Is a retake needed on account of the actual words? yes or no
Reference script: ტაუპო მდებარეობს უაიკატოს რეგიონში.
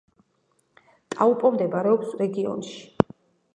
yes